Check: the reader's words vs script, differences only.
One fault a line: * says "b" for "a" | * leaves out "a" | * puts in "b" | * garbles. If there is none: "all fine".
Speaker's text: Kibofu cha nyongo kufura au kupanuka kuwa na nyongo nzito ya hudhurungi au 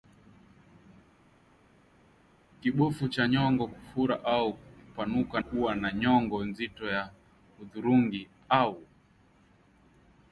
all fine